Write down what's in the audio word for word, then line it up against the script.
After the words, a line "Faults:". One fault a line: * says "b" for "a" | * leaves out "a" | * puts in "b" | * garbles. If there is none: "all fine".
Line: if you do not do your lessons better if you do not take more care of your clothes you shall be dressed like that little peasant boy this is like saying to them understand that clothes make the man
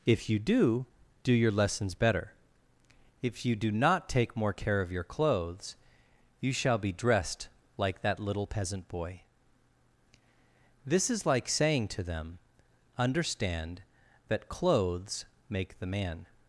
if you do do your lessons better if you do not take more care of your clothes you shall be dressed like that little peasant boy this is like saying to them understand that clothes make the man
Faults:
* leaves out "not"